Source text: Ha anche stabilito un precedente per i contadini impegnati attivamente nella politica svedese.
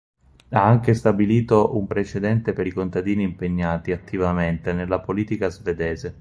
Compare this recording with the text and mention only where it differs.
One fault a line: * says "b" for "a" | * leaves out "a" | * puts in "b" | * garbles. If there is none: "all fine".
all fine